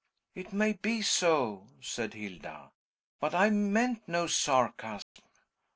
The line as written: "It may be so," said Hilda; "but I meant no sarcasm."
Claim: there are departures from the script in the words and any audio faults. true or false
true